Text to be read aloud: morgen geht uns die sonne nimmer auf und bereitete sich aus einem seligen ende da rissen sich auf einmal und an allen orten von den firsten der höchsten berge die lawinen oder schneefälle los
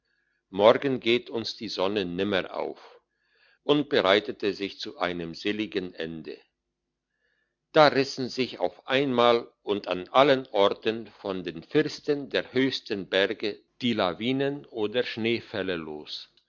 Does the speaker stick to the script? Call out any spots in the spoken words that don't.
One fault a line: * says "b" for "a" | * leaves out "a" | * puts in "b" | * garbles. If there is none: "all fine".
* says "zu" for "aus"